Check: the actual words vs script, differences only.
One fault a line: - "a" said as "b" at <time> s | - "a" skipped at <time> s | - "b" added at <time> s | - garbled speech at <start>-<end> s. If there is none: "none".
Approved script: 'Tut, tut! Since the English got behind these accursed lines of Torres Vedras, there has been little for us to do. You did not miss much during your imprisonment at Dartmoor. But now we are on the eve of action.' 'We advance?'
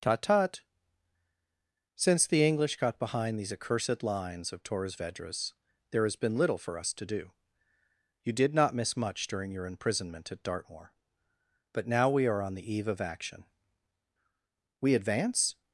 none